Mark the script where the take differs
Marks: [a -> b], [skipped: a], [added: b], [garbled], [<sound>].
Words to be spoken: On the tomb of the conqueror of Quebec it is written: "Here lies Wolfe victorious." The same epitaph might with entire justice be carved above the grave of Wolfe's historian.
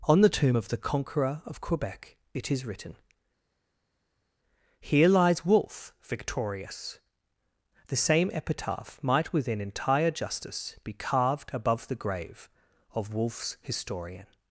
On the tomb of the conqueror of Quebec it is written: "Here lies Wolfe victorious." The same epitaph might [with -> within] entire justice be carved above the grave of Wolfe's historian.